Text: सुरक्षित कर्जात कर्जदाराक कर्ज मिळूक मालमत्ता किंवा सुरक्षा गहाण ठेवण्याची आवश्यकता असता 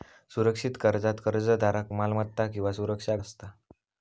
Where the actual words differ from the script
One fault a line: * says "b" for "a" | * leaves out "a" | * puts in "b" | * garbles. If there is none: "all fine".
* leaves out "कर्ज मिळूक"
* leaves out "गहाण ठेवण्याची आवश्यकता"